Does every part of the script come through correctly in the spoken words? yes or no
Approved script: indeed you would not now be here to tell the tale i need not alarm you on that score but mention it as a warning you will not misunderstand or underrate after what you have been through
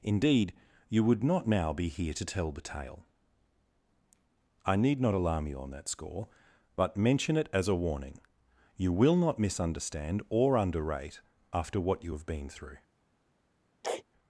yes